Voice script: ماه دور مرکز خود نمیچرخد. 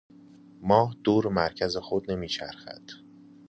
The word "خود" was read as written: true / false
true